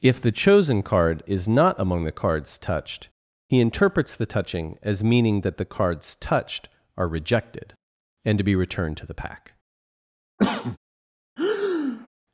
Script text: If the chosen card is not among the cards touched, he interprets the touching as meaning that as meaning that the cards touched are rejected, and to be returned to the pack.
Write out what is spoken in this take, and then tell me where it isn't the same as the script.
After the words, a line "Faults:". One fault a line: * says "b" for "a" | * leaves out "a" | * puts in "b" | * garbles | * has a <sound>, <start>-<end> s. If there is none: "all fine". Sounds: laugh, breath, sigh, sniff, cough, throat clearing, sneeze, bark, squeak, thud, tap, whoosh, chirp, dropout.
If the chosen card is not among the cards touched, he interprets the touching as meaning that the cards touched are rejected, and to be returned to the pack.
Faults:
* leaves out "as meaning that"
* has a cough, 10.4-10.8 s
* has a breath, 11.4-12.1 s